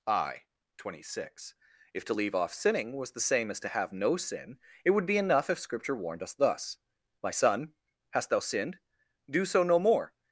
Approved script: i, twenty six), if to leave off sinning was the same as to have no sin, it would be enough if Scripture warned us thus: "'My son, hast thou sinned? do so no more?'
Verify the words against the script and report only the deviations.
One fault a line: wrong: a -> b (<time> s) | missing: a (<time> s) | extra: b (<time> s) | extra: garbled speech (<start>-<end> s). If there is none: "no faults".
no faults